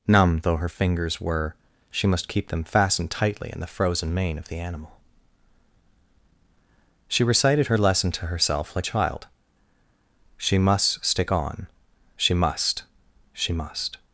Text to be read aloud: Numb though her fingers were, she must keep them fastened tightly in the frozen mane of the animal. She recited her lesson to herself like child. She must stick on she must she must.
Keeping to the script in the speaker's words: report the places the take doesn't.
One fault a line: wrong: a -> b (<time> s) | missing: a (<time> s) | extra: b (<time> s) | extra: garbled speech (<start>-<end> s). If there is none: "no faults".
no faults